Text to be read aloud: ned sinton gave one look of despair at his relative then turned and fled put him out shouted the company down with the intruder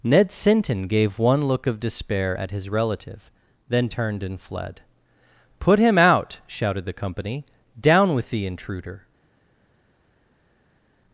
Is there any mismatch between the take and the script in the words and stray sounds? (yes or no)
no